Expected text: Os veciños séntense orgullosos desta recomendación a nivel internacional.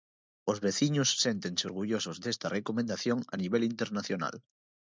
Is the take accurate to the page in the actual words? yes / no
yes